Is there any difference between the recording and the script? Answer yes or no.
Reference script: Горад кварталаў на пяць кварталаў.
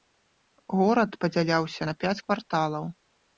yes